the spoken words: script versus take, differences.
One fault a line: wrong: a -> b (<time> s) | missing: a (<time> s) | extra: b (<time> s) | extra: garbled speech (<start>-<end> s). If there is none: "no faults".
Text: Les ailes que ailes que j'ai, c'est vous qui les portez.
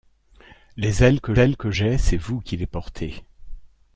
no faults